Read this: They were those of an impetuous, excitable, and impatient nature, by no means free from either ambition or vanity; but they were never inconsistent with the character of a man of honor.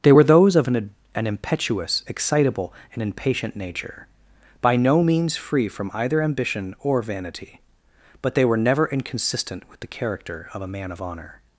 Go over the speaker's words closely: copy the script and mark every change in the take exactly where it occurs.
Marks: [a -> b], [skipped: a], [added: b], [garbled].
They were those of an [added: an] impetuous, excitable, and impatient nature, by no means free from either ambition or vanity; but they were never inconsistent with the character of a man of honor.